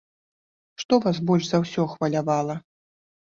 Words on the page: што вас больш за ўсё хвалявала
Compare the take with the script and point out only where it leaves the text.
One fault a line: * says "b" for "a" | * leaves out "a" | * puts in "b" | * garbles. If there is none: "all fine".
all fine